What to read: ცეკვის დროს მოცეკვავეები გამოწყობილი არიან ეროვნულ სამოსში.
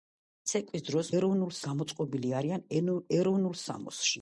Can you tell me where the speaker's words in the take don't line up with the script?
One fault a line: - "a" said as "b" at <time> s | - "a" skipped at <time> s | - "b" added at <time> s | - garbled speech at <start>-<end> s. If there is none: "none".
- "მოცეკვავეები" said as "ეროვნულ" at 1.2 s